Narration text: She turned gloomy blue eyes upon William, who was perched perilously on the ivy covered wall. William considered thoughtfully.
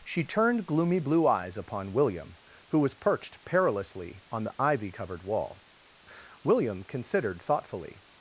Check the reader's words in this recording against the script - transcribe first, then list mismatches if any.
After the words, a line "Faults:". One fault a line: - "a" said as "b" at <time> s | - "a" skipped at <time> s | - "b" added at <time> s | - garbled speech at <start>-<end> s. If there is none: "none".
She turned gloomy blue eyes upon William, who was perched perilously on the ivy covered wall. William considered thoughtfully.
Faults:
none